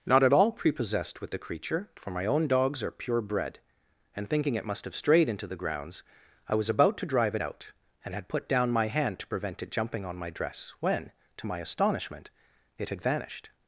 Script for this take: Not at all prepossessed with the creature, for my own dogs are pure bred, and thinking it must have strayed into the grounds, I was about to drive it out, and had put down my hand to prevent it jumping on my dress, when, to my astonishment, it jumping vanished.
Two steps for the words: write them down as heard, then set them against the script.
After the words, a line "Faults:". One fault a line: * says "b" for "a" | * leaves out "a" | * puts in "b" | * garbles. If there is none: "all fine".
Not at all prepossessed with the creature, for my own dogs are pure bred, and thinking it must have strayed into the grounds, I was about to drive it out, and had put down my hand to prevent it jumping on my dress, when, to my astonishment, it had vanished.
Faults:
* says "had" for "jumping"